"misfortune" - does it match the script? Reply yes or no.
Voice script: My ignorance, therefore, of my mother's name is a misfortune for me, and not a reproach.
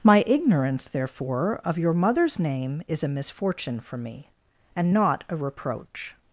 yes